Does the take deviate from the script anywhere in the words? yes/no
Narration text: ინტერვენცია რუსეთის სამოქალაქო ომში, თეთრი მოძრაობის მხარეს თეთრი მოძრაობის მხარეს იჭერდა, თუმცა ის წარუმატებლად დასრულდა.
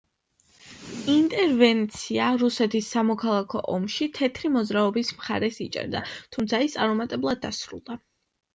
yes